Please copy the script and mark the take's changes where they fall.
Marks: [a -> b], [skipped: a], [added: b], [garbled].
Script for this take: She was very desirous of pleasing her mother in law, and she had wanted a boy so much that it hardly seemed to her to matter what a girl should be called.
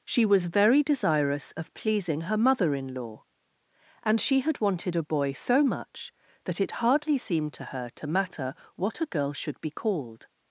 She was very desirous of pleasing her mother in law, and she had wanted a boy so much that it hardly seemed to her to matter what a girl should be called.